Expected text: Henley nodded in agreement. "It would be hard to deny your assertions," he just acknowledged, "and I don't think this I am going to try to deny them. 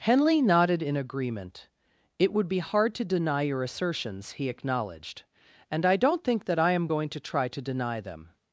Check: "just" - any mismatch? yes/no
yes